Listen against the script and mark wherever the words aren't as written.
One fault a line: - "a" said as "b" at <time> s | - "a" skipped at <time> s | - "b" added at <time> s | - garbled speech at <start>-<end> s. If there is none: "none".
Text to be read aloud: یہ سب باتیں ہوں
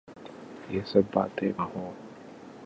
none